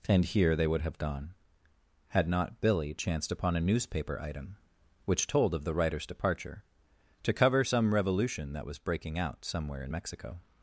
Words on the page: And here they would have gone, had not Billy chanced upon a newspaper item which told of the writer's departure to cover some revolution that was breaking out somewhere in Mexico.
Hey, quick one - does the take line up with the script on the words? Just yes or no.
yes